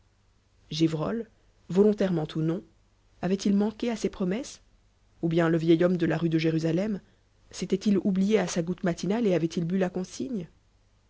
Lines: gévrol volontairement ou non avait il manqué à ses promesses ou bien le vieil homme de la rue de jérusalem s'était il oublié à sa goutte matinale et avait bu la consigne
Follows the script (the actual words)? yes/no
no